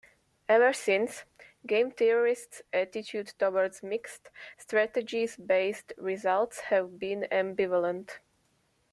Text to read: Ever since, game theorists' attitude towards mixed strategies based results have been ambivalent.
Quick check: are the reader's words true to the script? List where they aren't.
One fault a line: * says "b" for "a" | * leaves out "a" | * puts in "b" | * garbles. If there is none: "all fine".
all fine